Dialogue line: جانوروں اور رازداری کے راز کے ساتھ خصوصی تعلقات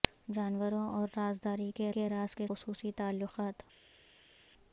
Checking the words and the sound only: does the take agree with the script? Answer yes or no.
no